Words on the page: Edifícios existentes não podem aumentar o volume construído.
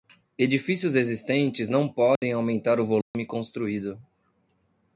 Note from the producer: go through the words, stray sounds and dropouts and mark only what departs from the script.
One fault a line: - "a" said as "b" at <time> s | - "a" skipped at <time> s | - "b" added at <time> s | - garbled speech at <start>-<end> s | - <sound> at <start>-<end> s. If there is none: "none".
- dropout at 2.2-2.2 s
- dropout at 3.0-3.1 s